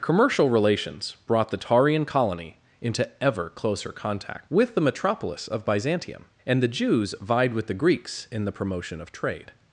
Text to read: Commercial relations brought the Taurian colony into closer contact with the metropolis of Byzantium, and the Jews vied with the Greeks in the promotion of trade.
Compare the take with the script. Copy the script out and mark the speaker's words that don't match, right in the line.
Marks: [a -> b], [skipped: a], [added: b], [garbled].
Commercial relations brought the Taurian colony into [added: ever] closer contact with the metropolis of Byzantium, and the Jews vied with the Greeks in the promotion of trade.